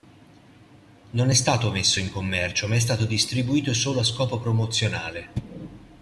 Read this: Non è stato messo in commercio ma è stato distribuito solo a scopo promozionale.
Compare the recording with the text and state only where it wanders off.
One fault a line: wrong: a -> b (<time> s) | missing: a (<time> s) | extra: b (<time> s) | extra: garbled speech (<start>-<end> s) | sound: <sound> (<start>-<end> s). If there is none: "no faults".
no faults